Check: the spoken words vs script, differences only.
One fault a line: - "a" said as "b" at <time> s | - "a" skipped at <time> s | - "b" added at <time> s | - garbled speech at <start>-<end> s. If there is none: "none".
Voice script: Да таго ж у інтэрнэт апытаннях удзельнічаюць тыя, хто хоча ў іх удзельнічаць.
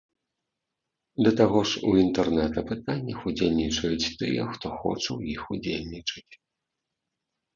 none